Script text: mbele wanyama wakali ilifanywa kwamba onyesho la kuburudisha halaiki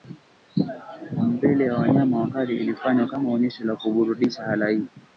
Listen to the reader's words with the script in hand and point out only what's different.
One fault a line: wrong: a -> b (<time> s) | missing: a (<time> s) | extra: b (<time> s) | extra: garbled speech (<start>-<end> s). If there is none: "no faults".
extra: ya (1.6 s)
wrong: kwamba -> kama (3.1 s)